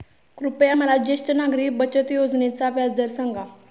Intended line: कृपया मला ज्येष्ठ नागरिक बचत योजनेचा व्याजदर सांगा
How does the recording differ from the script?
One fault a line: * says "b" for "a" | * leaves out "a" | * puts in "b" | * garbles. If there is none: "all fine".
all fine